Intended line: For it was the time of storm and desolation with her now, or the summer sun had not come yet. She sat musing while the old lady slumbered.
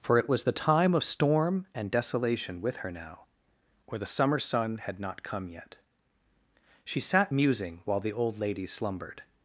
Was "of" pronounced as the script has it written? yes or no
yes